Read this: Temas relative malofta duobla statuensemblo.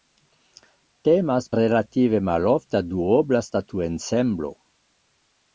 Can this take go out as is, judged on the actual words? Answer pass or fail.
pass